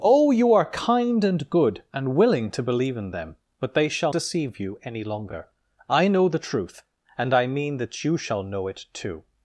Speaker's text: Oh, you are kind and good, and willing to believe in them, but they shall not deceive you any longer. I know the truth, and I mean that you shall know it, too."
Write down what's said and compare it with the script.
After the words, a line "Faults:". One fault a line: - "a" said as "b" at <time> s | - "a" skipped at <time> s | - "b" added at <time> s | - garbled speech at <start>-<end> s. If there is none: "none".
Oh, you are kind and good, and willing to believe in them, but they shall deceive you any longer. I know the truth, and I mean that you shall know it, too."
Faults:
- "not" skipped at 4.1 s